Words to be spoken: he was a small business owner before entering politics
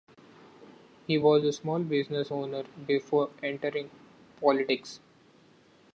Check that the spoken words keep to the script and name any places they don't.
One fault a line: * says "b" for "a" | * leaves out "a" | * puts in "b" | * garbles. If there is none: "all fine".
all fine